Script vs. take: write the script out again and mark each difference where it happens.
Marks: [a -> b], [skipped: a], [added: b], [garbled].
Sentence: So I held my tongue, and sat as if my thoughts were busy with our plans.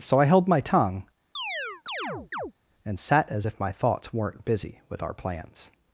So I held my tongue, and sat as if my thoughts [were -> weren't] busy with our plans.